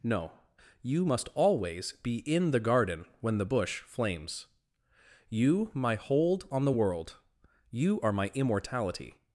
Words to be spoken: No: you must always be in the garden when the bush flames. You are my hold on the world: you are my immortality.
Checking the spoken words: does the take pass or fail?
fail